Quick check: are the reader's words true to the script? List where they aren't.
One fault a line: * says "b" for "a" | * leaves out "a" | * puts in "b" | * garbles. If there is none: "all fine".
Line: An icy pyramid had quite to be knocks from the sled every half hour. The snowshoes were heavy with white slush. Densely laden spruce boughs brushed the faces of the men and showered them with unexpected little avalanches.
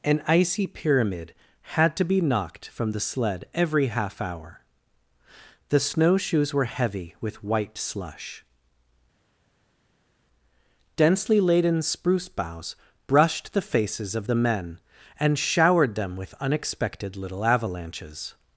* leaves out "quite"
* says "knocked" for "knocks"